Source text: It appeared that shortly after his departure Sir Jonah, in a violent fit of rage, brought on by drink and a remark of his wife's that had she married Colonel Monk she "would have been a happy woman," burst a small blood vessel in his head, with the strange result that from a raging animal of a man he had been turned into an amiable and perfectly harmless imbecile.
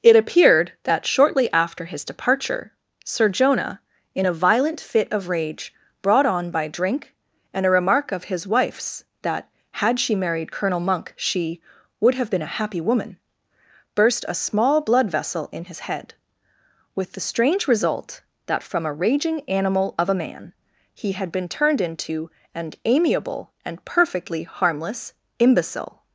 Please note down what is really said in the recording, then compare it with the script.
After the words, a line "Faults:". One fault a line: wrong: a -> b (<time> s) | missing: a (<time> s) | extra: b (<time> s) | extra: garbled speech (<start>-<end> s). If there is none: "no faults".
It appeared that shortly after his departure Sir Jonah, in a violent fit of rage, brought on by drink and a remark of his wife's that had she married Colonel Monk she "would have been a happy woman," burst a small blood vessel in his head, with the strange result that from a raging animal of a man he had been turned into an amiable and perfectly harmless imbecile.
Faults:
no faults